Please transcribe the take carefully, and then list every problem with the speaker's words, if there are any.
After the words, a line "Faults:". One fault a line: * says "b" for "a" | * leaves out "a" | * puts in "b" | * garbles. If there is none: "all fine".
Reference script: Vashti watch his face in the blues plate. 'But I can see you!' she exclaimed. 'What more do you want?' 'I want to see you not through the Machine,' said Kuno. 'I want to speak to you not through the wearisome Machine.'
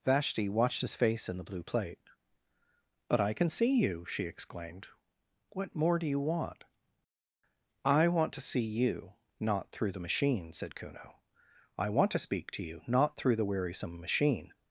Vashti watched his face in the blue plate. 'But I can see you!' she exclaimed. 'What more do you want?' 'I want to see you not through the Machine,' said Kuno. 'I want to speak to you not through the wearisome Machine.'
Faults:
* says "watched" for "watch"
* says "blue" for "blues"